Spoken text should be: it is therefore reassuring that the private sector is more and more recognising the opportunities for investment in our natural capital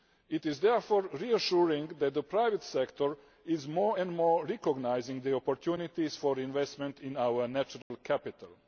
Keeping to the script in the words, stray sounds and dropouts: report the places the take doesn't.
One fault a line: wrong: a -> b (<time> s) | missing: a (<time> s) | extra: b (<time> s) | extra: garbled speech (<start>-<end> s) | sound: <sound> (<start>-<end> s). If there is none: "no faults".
sound: dropout (7.8-7.9 s)